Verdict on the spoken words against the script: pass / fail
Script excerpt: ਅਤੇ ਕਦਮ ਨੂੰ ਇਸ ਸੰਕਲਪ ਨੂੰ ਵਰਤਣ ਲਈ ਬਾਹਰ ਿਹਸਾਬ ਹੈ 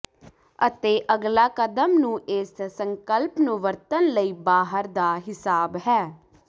fail